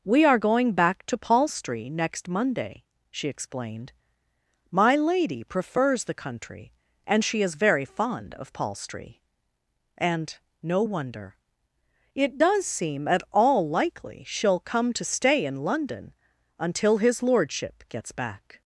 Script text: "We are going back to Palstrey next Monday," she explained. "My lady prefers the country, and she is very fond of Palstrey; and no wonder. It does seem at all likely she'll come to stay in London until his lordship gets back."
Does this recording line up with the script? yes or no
yes